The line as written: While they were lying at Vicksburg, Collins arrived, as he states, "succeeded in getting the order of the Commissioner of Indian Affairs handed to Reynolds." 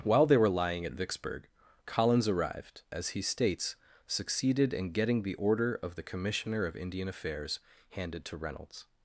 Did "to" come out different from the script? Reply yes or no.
no